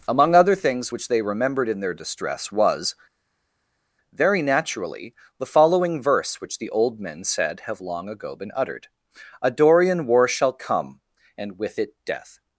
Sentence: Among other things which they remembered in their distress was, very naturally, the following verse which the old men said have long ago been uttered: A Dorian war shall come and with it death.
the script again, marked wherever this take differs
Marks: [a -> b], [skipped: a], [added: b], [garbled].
Among other things which they remembered in their distress was, very naturally, the following verse which the old men said have long ago been uttered: A Dorian war shall come and with it death.